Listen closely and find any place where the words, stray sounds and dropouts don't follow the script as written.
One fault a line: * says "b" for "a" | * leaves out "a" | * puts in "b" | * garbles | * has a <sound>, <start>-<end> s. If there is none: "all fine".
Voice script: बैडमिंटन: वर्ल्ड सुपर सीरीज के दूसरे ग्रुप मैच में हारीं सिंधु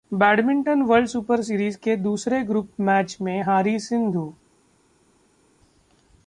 all fine